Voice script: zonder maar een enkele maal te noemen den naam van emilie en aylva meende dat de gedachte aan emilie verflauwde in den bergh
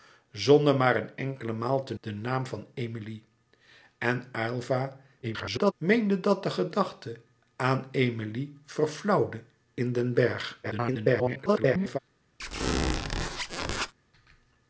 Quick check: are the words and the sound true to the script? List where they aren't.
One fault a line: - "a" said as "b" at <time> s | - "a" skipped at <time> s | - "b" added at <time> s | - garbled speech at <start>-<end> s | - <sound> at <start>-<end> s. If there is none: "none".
- "noemen" skipped at 1.9 s
- garbled speech at 5.2-5.7 s
- garbled speech at 10.6-12.0 s
- squeak at 12.4-13.9 s